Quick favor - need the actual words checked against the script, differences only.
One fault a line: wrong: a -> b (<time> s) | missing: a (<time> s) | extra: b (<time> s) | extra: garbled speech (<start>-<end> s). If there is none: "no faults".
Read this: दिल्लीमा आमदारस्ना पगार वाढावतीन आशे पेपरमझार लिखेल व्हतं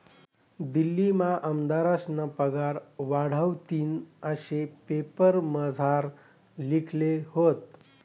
no faults